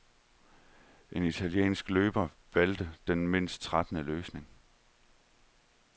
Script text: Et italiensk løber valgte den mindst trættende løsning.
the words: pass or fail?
fail